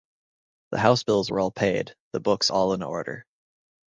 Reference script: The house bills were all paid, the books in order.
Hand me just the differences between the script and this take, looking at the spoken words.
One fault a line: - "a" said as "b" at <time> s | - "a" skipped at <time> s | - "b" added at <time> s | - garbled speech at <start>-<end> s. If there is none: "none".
- "all" added at 2.5 s